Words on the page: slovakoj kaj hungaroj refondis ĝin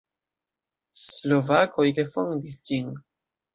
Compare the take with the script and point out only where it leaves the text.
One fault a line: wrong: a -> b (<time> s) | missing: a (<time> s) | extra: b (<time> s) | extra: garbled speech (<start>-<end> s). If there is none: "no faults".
missing: kaj hungaroj (1.9 s)